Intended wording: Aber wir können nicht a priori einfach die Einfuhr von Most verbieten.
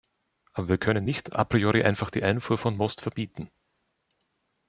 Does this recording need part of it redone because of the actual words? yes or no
no